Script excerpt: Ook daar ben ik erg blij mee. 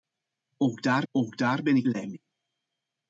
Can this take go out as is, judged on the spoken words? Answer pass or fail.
fail